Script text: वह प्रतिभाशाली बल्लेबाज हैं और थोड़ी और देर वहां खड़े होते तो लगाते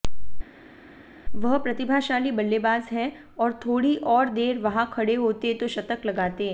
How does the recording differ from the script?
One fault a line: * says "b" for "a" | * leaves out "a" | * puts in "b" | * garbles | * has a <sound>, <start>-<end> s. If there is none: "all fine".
* puts in "शतक"